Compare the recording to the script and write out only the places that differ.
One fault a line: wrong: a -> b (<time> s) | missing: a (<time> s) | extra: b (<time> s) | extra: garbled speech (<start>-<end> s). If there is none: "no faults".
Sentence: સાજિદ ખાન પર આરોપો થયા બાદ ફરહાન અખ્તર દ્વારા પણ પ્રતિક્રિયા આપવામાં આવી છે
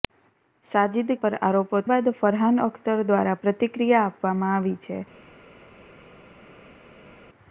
missing: ખાન (1.1 s)
missing: થયા (1.8 s)
missing: પણ (3.4 s)